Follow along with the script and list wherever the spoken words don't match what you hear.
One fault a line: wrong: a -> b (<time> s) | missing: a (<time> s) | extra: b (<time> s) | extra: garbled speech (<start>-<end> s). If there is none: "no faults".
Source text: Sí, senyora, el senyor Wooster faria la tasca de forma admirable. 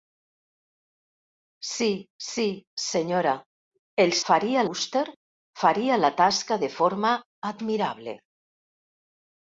extra: sí (2.3 s)
wrong: senyor -> faria (4.3 s)